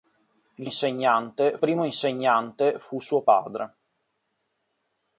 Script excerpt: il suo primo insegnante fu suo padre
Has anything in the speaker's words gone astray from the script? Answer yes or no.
yes